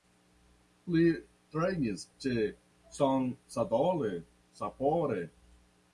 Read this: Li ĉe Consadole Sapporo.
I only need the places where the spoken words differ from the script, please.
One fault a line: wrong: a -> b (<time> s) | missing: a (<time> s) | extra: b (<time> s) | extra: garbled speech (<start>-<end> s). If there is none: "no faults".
extra: trejnis (1.6 s)